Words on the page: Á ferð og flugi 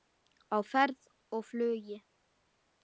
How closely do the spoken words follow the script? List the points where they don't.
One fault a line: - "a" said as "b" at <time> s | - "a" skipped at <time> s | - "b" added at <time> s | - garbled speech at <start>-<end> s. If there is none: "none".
none